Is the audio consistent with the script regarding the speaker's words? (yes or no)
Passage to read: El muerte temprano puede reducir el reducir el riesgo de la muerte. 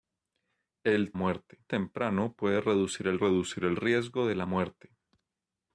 yes